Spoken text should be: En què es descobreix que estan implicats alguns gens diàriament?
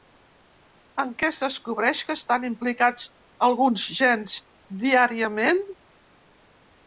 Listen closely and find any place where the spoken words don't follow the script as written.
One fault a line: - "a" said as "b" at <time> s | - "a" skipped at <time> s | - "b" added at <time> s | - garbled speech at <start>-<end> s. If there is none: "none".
none